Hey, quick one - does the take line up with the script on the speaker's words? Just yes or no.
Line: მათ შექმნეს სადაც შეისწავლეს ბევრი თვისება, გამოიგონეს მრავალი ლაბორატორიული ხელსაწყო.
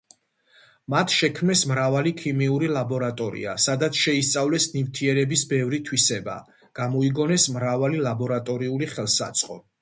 no